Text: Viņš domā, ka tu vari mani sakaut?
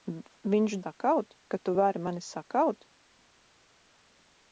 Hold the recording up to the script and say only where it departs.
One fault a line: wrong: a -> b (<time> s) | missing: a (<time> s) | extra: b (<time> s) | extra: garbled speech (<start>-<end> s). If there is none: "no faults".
wrong: domā -> sakaut (0.8 s)